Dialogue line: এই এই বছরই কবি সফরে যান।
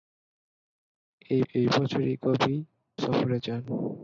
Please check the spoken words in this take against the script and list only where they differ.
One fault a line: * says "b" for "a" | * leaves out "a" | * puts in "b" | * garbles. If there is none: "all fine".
all fine